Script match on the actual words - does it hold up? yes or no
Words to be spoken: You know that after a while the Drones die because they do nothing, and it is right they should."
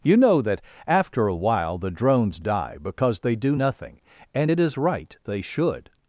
yes